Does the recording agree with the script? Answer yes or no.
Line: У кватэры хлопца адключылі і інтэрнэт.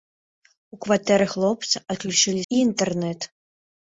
yes